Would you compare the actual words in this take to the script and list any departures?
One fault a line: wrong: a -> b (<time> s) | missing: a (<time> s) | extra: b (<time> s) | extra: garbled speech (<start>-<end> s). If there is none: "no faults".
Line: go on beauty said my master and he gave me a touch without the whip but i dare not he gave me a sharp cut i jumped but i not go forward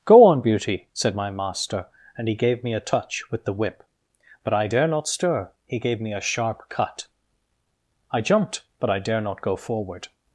wrong: without -> with (3.3 s)
extra: stir (5.1 s)
extra: dare (9.0 s)